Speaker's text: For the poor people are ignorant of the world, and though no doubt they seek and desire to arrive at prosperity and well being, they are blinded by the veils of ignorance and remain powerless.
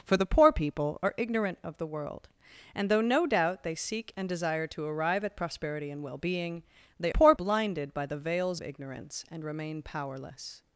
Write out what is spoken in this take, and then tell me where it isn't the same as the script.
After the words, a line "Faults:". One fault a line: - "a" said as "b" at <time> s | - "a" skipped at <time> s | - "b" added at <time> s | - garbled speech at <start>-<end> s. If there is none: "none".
For the poor people are ignorant of the world, and though no doubt they seek and desire to arrive at prosperity and well being, they poor blinded by the veils ignorance and remain powerless.
Faults:
- "are" said as "poor" at 7.1 s
- "of" skipped at 8.6 s